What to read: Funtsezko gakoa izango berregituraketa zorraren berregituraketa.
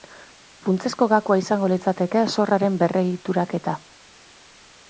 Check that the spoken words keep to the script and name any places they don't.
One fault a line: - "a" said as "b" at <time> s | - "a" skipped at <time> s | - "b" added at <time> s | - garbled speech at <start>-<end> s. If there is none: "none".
- "berregituraketa" said as "litzateke" at 1.7 s